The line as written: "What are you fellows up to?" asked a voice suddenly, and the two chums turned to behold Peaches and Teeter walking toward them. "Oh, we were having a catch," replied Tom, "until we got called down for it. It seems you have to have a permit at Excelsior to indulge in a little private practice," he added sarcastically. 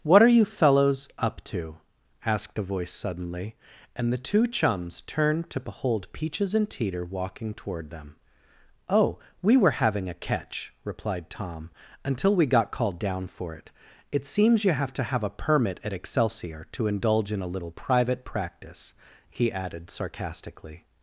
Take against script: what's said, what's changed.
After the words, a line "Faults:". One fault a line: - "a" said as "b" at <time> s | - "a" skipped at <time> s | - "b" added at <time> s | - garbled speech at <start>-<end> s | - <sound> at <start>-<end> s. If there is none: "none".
"What are you fellows up to?" asked a voice suddenly, and the two chums turned to behold Peaches and Teeter walking toward them. "Oh, we were having a catch," replied Tom, "until we got called down for it. It seems you have to have a permit at Excelsior to indulge in a little private practice," he added sarcastically.
Faults:
none